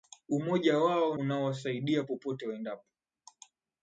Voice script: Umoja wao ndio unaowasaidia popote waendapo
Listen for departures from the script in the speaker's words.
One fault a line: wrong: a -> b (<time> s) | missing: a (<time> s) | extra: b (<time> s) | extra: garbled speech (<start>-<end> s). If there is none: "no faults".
missing: ndio (1.2 s)